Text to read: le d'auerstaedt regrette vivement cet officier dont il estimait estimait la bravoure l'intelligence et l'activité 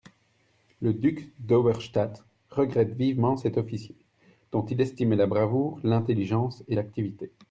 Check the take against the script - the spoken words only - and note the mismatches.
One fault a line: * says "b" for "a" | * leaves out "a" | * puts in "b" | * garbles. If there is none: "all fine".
* puts in "duc"
* leaves out "estimait"